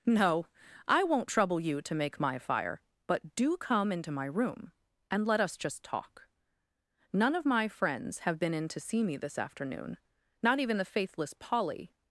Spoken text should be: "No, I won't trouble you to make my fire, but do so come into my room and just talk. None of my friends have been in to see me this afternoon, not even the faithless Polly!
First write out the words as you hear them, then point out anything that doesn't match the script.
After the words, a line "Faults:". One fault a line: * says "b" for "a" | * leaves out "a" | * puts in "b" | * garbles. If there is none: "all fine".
"No, I won't trouble you to make my fire, but do come into my room and let us just talk. None of my friends have been in to see me this afternoon, not even the faithless Polly!
Faults:
* leaves out "so"
* puts in "let us"